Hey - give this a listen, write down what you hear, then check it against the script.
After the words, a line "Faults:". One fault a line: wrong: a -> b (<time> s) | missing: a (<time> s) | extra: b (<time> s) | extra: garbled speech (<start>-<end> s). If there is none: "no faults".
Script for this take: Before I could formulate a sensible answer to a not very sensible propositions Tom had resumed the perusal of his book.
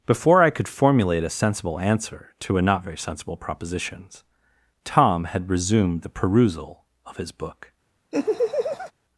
Before I could formulate a sensible answer to a not very sensible propositions Tom had resumed the perusal of his book.
Faults:
no faults